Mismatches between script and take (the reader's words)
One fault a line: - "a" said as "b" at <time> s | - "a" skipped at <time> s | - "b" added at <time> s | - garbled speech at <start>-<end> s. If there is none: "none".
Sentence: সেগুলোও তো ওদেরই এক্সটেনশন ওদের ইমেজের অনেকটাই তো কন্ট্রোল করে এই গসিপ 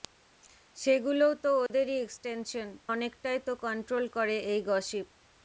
- "ওদের ইমেজের" skipped at 2.7 s